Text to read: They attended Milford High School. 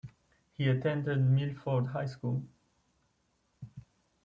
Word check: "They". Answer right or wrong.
wrong